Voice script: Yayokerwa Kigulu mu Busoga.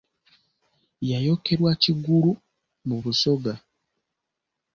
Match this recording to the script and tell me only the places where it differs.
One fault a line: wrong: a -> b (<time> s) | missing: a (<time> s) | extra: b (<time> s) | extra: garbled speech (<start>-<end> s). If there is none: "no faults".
no faults